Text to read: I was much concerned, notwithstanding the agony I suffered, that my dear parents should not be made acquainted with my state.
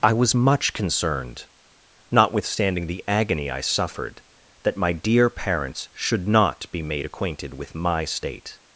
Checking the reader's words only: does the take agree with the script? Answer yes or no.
yes